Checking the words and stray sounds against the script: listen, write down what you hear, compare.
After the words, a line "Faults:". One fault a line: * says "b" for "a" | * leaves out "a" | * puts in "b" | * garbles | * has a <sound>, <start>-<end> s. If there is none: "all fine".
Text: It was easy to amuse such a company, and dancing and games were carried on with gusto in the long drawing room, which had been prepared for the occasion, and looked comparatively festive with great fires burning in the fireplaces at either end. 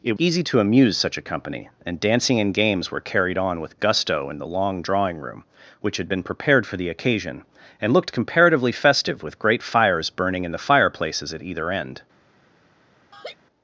It easy to amuse such a company, and dancing and games were carried on with gusto in the long drawing room, which had been prepared for the occasion, and looked comparatively festive with great fires burning in the fireplaces at either end.
Faults:
* leaves out "was"
* has a laugh, 13.1-13.4 s